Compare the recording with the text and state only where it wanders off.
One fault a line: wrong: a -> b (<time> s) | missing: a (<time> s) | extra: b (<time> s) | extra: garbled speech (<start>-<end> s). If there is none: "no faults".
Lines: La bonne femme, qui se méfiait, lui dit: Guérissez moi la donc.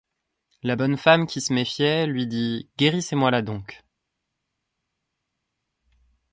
no faults